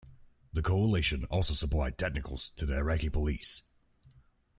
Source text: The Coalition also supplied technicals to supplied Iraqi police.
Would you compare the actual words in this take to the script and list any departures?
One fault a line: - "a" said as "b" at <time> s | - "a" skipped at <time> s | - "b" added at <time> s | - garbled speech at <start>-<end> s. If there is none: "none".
- "supplied" said as "the" at 2.6 s